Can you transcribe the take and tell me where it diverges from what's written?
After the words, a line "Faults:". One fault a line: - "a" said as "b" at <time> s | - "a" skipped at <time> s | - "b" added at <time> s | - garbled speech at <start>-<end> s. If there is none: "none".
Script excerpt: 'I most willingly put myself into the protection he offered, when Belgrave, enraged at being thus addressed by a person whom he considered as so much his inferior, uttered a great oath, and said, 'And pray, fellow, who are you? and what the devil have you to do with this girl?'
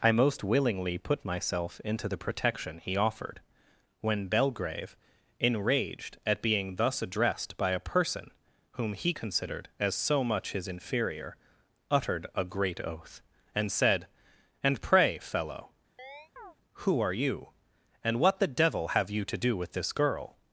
'I most willingly put myself into the protection he offered, when Belgrave, enraged at being thus addressed by a person whom he considered as so much his inferior, uttered a great oath, and said, 'And pray, fellow, who are you? and what the devil have you to do with this girl?'
Faults:
none